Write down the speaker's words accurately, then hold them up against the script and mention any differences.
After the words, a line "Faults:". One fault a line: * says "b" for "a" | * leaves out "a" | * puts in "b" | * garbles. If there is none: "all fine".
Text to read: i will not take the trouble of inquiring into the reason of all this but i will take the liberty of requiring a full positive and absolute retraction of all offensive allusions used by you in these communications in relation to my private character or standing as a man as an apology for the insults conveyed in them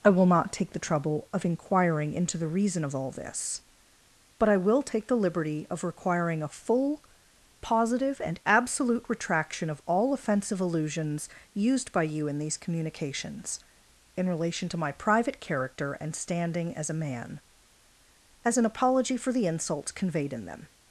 i will not take the trouble of inquiring into the reason of all this but i will take the liberty of requiring a full positive and absolute retraction of all offensive allusions used by you in these communications in relation to my private character and standing as a man as an apology for the insults conveyed in them
Faults:
* says "and" for "or"